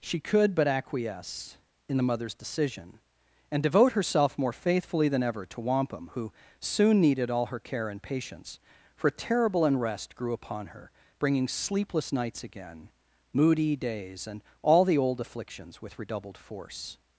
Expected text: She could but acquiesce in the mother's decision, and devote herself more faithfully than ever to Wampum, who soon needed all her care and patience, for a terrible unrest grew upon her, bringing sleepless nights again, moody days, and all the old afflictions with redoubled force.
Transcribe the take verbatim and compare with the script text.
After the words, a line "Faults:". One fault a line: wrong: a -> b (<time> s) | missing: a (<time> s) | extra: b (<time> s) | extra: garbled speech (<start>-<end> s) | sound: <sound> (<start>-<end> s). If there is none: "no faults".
She could but acquiesce in the mother's decision, and devote herself more faithfully than ever to Wampum, who soon needed all her care and patience, for a terrible unrest grew upon her, bringing sleepless nights again, moody days, and all the old afflictions with redoubled force.
Faults:
no faults